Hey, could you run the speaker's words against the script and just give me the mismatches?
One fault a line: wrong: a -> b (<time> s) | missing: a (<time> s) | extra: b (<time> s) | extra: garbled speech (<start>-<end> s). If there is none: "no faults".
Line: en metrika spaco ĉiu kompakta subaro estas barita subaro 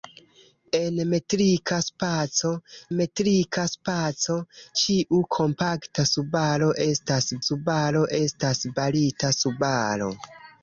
extra: metrika spaco (3.0 s)
extra: subaro estas (7.4 s)